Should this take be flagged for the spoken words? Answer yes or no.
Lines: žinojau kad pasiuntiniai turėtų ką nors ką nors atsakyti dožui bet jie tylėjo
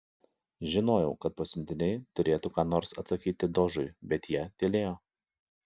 yes